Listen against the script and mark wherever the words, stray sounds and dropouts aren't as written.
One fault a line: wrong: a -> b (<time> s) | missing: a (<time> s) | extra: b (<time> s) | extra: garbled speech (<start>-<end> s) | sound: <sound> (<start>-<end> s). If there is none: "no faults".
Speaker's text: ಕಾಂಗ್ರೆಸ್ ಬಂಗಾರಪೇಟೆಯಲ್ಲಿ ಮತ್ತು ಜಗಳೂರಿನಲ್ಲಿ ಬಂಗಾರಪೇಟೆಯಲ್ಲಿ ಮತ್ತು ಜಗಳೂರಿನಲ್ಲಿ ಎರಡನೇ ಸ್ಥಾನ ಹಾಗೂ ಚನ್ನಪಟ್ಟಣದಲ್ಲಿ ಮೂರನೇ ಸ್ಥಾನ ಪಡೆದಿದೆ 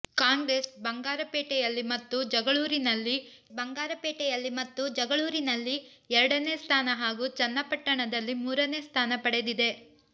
no faults